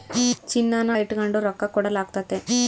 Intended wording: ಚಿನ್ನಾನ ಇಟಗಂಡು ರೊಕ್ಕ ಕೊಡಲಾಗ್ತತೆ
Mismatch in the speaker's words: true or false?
false